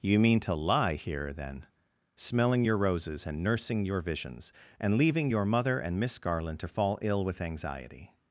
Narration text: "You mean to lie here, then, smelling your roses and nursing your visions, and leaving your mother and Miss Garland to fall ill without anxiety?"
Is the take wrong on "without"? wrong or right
wrong